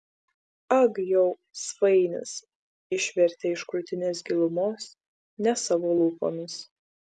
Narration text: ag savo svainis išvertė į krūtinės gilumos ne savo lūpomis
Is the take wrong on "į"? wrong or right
wrong